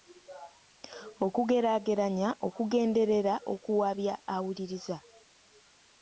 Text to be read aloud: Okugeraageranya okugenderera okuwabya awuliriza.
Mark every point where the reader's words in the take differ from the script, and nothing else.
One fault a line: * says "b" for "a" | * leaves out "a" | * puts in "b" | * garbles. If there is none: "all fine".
all fine